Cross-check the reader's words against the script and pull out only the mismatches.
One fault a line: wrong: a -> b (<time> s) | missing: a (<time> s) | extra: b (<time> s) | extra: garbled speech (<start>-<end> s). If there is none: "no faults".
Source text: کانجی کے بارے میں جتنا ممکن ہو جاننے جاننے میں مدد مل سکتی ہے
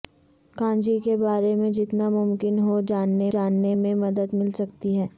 no faults